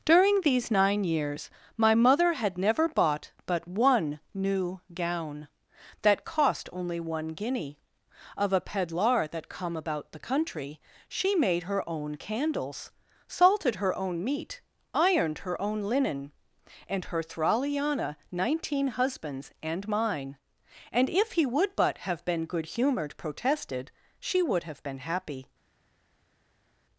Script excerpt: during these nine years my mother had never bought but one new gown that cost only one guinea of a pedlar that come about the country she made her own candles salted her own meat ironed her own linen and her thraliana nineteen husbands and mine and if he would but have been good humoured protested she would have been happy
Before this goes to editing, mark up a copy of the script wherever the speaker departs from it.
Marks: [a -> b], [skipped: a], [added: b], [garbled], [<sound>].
during these nine years my mother had never bought but one new gown that cost only one guinea of a pedlar that come about the country she made her own candles salted her own meat ironed her own linen and her thraliana nineteen husbands and mine and if he would but have been good humoured protested she would have been happy